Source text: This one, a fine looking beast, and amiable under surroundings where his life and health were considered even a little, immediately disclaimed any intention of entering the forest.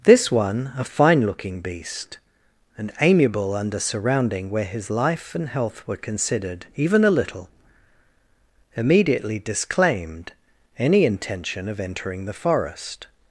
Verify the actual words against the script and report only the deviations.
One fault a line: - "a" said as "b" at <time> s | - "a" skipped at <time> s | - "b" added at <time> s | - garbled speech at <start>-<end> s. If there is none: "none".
- "surroundings" said as "surrounding" at 3.8 s